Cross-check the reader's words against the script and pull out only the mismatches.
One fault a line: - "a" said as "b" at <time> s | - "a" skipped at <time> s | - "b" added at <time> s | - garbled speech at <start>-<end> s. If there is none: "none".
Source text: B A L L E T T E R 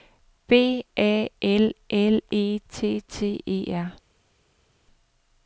none